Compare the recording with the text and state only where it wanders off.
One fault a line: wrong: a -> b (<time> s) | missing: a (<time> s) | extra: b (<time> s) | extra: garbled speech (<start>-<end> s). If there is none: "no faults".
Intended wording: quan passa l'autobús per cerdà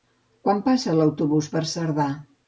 no faults